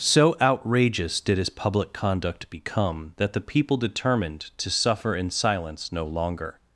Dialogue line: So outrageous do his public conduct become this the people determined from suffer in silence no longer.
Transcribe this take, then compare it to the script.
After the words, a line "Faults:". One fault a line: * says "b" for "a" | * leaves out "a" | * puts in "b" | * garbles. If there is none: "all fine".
So outrageous did his public conduct become that the people determined to suffer in silence no longer.
Faults:
* says "did" for "do"
* says "that" for "this"
* says "to" for "from"